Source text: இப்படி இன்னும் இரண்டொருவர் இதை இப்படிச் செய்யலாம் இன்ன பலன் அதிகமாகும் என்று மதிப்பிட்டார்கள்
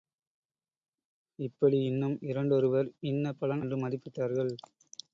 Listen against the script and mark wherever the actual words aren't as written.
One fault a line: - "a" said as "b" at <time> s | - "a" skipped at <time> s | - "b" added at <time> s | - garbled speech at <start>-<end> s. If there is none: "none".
- "இதை இப்படிச் செய்யலாம்" skipped at 2.9 s
- "அதிகமாகும்" skipped at 3.6 s